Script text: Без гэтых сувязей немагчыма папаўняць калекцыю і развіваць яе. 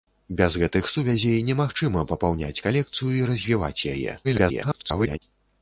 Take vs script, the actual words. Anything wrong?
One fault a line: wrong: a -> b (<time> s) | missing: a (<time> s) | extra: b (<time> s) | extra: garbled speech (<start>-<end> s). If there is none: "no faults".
extra: garbled speech (4.2-5.2 s)